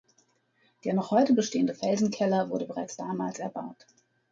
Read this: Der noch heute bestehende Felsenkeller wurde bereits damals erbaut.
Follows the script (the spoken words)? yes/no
yes